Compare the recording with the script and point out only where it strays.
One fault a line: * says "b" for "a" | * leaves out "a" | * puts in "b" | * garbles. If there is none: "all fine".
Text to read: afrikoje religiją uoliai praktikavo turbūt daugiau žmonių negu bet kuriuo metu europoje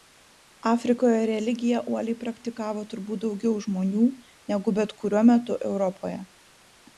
all fine